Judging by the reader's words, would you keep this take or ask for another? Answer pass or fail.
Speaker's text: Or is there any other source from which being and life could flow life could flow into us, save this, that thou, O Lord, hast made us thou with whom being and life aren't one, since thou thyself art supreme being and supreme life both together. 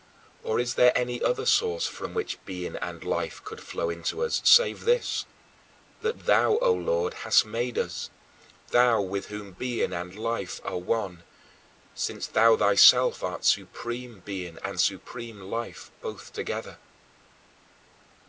fail